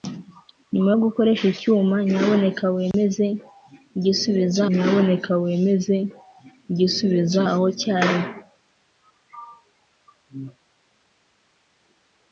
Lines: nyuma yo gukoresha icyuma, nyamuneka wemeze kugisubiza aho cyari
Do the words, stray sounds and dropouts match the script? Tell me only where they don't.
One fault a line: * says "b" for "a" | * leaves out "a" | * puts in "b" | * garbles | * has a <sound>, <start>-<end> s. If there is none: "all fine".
* has a dropout, 2.9-2.9 s
* puts in "nyamuneka wemeze kugisubiza"